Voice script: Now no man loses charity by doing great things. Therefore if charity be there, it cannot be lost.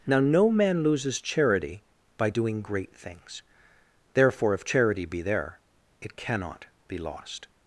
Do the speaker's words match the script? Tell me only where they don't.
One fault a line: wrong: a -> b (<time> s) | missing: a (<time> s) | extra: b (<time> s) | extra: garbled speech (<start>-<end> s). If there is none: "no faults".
no faults